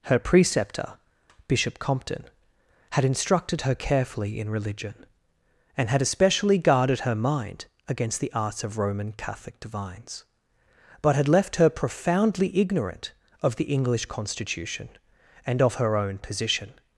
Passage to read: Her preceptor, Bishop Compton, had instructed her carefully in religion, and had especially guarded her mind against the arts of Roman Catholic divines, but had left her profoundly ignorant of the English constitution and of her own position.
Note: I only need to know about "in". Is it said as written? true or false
true